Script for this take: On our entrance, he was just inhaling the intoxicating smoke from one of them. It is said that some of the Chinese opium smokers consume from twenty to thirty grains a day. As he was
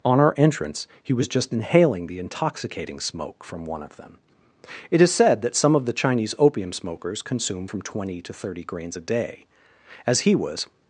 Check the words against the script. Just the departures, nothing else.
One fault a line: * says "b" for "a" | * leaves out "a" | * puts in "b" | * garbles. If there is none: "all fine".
all fine